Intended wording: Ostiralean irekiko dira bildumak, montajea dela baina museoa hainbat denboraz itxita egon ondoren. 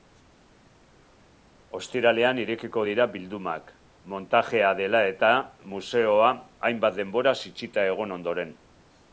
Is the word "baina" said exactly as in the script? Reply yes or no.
no